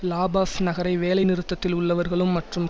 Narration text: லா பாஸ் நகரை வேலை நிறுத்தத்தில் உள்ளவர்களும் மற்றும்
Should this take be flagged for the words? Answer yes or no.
no